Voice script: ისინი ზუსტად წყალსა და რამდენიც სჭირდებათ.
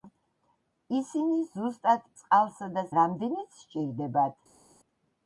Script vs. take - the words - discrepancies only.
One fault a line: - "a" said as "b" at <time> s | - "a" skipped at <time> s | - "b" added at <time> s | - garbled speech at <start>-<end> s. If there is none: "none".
none